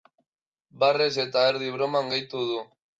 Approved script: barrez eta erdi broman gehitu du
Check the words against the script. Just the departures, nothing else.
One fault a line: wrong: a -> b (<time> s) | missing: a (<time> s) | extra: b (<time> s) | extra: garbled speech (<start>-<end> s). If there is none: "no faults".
no faults